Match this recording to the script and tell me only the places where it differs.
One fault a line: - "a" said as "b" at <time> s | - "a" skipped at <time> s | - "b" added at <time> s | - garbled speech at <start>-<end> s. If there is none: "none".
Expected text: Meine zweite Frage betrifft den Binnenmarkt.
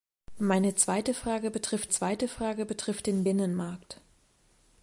- "zweite Frage betrifft" added at 1.9 s